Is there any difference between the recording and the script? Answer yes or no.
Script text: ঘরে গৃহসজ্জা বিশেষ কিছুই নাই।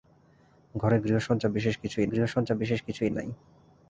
yes